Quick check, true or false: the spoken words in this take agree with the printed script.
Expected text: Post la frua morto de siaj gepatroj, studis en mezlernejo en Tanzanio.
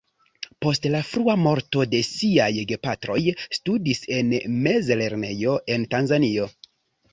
true